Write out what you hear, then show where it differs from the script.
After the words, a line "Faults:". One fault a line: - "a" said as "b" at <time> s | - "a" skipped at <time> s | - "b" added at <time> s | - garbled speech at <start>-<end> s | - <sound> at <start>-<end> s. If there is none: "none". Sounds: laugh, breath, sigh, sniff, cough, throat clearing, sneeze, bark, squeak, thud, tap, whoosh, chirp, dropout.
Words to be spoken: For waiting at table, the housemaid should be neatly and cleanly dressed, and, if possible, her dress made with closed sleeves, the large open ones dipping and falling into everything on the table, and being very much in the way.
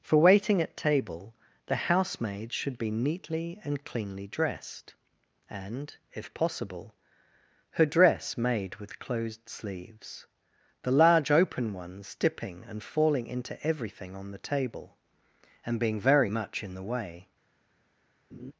For waiting at table, the housemaid should be neatly and cleanly dressed, and, if possible, her dress made with closed sleeves, the large open ones dipping and falling into everything on the table, and being very much in the way.
Faults:
- laugh at 18.3-18.5 s